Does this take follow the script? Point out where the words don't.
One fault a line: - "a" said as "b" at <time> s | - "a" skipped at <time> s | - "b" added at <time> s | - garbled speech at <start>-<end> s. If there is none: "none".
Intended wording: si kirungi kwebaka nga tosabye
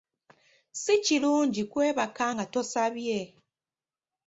none